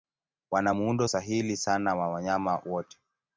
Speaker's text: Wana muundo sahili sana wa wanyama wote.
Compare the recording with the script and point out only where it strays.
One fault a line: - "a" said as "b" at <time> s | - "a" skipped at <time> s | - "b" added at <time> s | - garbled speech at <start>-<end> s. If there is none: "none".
none